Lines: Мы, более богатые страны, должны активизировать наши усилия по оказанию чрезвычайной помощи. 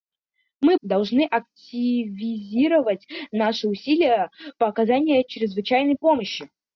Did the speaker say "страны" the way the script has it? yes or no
no